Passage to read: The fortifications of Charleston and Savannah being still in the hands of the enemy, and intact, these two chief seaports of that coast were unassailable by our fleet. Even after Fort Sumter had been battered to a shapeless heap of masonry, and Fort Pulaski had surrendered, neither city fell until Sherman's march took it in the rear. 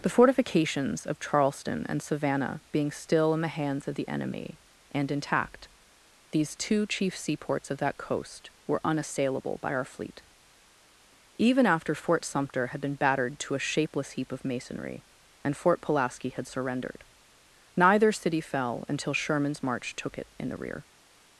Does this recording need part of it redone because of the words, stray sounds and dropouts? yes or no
no